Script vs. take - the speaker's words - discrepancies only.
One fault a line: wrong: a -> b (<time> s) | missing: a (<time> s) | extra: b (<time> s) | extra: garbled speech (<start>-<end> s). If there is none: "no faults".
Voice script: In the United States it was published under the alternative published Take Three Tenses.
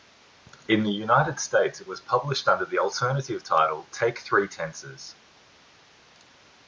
wrong: published -> title (3.4 s)